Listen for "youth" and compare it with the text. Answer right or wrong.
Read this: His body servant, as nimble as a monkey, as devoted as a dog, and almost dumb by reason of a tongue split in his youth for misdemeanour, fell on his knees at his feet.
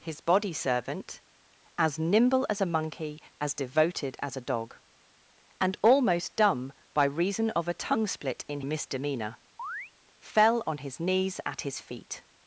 wrong